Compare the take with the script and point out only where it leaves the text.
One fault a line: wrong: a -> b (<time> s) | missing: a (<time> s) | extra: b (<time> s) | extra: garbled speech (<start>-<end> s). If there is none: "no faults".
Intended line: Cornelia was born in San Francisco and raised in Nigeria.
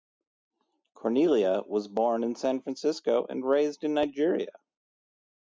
no faults